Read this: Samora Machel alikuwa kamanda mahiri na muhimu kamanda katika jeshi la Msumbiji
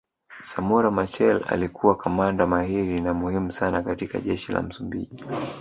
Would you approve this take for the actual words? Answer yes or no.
no